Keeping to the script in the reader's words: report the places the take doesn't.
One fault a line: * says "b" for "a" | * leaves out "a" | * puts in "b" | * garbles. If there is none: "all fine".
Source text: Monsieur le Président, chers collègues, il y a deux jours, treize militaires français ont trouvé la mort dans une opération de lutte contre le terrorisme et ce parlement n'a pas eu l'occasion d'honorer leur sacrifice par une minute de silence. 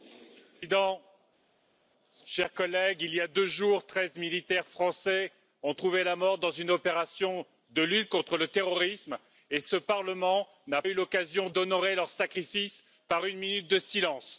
* leaves out "pas"